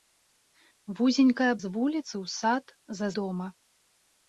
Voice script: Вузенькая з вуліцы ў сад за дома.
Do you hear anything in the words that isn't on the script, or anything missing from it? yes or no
no